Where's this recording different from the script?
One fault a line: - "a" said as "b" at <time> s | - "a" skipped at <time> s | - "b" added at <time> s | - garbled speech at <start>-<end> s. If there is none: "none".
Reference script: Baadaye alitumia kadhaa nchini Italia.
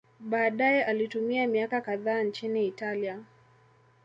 - "miaka" added at 1.5 s